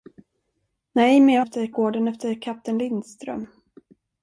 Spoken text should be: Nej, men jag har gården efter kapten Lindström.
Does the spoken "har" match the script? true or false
false